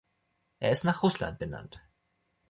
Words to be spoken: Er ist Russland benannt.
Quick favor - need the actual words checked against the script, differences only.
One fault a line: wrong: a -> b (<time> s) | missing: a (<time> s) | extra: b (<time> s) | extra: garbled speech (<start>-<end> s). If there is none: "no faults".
extra: nach (0.8 s)